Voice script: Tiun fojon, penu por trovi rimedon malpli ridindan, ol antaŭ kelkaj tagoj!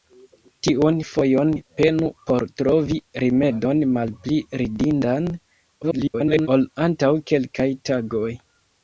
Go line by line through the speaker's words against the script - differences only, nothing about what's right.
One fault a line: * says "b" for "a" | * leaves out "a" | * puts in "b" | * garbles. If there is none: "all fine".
* garbles